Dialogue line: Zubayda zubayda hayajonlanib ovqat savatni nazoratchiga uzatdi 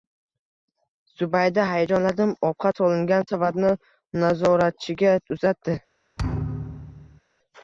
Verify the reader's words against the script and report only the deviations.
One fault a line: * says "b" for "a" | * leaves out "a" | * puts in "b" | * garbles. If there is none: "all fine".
* leaves out "zubayda"
* puts in "solingan"